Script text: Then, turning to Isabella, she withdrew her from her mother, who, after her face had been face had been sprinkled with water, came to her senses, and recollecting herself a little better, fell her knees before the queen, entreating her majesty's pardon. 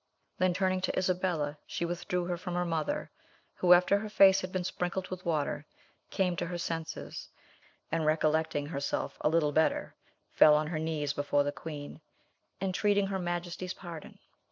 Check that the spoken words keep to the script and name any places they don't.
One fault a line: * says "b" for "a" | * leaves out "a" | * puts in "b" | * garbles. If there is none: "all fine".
* leaves out "face had been"
* puts in "on"